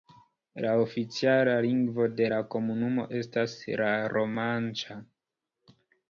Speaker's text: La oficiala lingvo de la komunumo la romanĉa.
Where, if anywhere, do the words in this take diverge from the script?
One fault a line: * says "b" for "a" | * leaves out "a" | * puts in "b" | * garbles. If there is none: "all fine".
* puts in "estas"